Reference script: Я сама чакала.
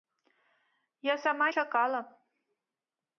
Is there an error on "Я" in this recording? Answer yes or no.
no